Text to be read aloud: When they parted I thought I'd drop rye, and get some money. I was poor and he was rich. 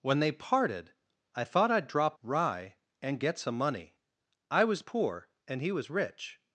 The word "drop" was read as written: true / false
true